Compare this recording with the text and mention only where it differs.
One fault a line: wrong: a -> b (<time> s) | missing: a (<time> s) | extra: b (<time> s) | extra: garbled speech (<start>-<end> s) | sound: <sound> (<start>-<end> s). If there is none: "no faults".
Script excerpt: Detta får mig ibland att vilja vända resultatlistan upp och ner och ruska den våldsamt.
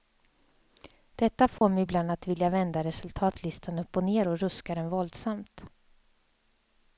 sound: dropout (1.6-1.6 s)